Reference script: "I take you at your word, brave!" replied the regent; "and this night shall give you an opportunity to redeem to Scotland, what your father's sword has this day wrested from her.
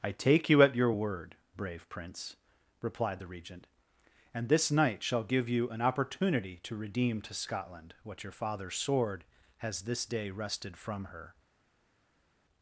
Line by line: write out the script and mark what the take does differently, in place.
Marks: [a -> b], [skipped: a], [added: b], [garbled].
"I take you at your word, brave!" [added: prince] replied the regent; "and this night shall give you an opportunity to redeem to Scotland, what your father's sword has this day wrested from her.